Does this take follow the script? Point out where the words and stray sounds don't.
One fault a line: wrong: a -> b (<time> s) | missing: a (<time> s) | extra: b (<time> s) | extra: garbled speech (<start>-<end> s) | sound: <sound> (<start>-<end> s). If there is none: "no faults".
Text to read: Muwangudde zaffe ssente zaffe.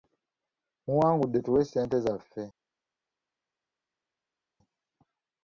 wrong: zaffe -> tuwe (1.4 s)